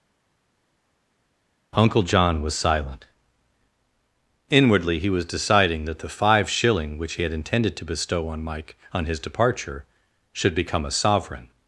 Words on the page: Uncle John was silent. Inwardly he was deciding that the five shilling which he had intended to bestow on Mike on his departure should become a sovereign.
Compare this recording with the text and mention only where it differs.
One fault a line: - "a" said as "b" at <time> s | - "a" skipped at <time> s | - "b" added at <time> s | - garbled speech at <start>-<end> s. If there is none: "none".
none